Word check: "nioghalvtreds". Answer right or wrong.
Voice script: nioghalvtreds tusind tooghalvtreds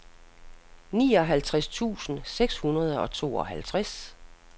right